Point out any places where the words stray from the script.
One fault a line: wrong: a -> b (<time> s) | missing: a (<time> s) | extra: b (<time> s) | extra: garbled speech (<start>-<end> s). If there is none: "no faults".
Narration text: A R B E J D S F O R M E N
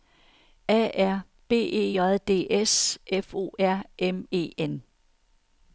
no faults